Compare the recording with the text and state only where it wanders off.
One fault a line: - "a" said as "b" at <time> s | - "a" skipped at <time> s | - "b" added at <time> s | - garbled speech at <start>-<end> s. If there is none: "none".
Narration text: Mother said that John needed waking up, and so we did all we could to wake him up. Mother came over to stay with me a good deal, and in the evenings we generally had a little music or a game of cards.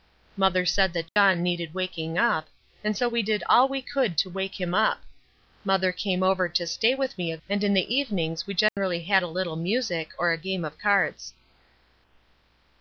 - "good deal" skipped at 7.4 s